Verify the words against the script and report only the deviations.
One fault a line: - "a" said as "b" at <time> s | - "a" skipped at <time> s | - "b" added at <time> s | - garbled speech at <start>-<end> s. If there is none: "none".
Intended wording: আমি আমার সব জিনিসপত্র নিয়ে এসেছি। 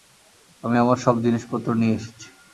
none